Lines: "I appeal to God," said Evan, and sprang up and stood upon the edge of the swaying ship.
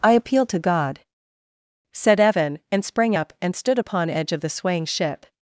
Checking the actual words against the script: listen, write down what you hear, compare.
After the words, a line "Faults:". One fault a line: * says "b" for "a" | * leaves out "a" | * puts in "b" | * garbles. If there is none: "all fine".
"I appeal to God," said Evan, and sprang up and stood upon edge of the swaying ship.
Faults:
* leaves out "the"